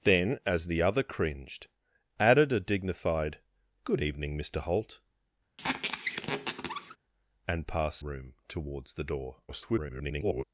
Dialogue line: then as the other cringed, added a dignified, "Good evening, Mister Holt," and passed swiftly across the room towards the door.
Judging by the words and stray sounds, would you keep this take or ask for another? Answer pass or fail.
fail